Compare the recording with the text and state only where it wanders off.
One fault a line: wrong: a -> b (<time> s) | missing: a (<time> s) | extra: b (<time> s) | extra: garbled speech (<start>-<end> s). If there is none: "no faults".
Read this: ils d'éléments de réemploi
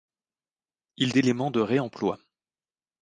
no faults